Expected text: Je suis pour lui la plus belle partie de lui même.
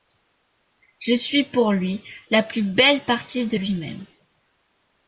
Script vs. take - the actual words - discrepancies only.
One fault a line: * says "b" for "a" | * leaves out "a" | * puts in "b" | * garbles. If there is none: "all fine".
all fine